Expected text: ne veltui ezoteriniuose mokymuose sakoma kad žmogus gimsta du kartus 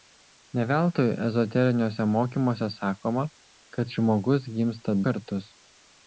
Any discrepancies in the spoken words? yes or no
yes